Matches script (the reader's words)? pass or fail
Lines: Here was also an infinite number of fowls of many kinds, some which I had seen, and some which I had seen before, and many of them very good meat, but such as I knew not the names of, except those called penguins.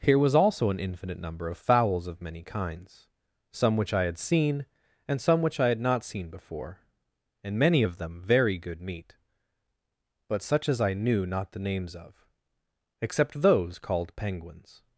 fail